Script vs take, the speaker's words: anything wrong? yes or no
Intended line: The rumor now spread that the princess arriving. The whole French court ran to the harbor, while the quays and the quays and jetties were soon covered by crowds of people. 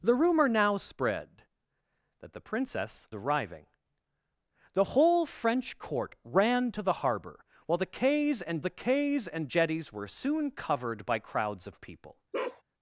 no